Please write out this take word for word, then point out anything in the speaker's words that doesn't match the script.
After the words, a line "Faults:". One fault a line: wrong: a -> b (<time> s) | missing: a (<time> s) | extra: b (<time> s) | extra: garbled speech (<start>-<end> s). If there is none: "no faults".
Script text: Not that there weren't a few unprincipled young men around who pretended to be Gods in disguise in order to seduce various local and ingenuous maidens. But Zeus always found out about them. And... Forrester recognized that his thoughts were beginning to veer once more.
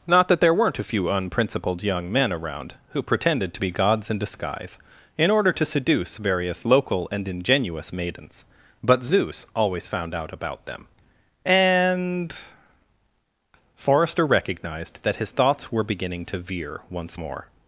Not that there weren't a few unprincipled young men around who pretended to be Gods in disguise in order to seduce various local and ingenuous maidens. But Zeus always found out about them. And... Forrester recognized that his thoughts were beginning to veer once more.
Faults:
no faults